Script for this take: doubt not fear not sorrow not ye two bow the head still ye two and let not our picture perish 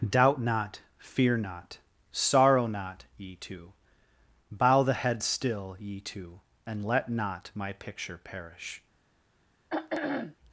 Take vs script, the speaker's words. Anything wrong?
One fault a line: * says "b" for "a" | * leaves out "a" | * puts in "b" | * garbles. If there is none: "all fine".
* says "my" for "our"